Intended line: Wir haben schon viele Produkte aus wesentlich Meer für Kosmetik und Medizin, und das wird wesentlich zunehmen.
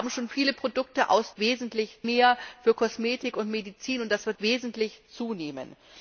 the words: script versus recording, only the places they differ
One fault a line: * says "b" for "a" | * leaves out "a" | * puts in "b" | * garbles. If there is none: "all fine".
all fine